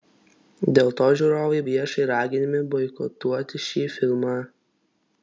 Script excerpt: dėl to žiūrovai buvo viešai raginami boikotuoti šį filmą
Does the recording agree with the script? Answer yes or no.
no